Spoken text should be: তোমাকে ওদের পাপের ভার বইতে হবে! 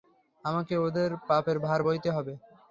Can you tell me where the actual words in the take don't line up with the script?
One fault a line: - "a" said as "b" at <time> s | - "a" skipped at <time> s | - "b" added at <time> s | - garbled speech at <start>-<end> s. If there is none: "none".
- "তোমাকে" said as "আমাকে" at 0.4 s